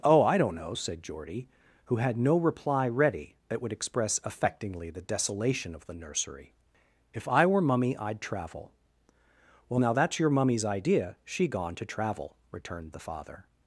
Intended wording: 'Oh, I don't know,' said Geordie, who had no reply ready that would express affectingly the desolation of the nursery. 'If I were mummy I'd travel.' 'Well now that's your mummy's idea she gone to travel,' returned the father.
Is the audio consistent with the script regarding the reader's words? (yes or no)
yes